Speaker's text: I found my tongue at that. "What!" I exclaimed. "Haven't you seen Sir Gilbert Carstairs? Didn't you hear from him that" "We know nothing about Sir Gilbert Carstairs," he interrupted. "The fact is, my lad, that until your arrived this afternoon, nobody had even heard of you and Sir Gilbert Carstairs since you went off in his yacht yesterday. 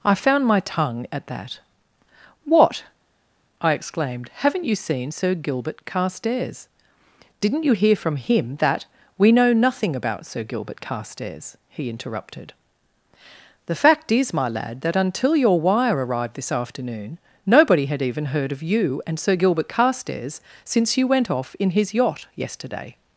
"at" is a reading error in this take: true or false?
false